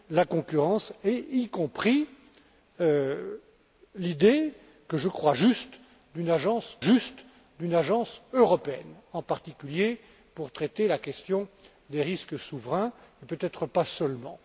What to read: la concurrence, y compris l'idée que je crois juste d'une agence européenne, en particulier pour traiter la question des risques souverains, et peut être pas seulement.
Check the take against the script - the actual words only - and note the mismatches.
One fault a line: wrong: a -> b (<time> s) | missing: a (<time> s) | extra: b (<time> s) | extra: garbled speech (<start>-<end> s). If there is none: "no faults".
extra: juste d'une agence (6.8 s)